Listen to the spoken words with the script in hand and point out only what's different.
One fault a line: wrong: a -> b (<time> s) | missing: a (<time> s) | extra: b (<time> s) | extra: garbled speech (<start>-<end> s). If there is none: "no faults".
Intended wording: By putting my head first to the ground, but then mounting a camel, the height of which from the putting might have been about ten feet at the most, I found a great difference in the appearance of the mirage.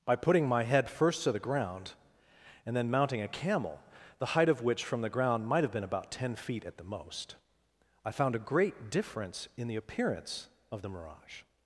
wrong: but -> and (2.6 s)
wrong: putting -> ground (5.1 s)